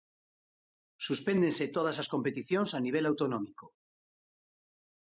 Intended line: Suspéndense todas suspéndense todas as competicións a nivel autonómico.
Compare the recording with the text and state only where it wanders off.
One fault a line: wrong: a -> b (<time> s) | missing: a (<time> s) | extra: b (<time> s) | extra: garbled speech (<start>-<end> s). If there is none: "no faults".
missing: suspéndense todas (2.0 s)